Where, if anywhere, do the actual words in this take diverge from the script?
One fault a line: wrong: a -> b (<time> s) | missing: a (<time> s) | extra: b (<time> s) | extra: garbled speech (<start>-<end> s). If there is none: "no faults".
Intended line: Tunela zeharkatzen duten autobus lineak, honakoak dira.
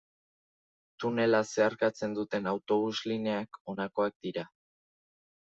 no faults